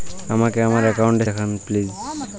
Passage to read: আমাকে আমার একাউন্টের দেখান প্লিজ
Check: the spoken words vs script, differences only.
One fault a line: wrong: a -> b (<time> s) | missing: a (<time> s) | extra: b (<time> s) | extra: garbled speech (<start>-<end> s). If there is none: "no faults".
no faults